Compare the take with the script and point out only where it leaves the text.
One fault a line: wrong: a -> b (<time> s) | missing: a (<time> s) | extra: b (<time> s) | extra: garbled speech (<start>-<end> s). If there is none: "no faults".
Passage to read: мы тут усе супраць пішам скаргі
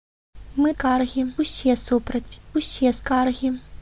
wrong: тут -> скаргі (0.7 s)
wrong: пішам -> усе (2.6 s)